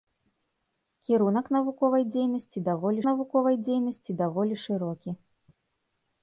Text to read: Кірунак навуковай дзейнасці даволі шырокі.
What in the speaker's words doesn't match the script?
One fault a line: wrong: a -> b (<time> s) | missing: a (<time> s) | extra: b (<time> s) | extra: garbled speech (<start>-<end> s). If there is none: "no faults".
extra: навуковай дзейнасці даволі (3.1 s)